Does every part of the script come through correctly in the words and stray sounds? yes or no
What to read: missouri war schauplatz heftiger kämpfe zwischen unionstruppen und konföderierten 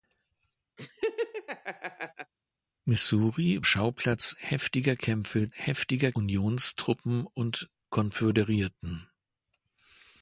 no